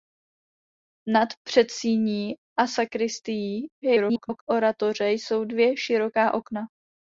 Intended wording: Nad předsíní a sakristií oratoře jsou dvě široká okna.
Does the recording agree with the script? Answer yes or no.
no